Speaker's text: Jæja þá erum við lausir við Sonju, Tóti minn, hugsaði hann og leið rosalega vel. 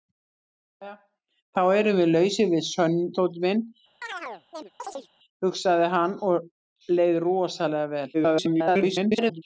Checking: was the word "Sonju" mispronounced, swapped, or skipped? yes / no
yes